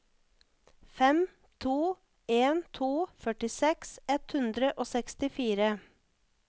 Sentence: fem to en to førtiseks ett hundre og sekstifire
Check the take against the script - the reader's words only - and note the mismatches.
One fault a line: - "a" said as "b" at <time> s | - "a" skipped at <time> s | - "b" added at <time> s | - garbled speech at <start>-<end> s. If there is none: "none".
none